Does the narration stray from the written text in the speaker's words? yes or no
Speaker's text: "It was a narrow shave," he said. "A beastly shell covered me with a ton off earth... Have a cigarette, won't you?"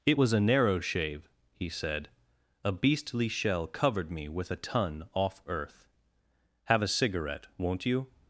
no